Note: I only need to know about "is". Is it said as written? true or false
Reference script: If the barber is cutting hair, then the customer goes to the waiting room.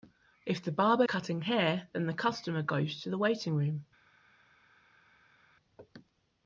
false